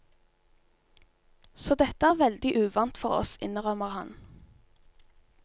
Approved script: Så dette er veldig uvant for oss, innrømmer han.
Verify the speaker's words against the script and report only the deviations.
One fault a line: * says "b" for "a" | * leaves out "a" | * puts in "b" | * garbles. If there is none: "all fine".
all fine